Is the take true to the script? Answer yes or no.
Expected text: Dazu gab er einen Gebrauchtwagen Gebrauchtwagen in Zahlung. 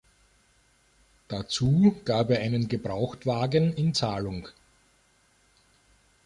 no